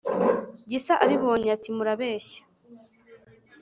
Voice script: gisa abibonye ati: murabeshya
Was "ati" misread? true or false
false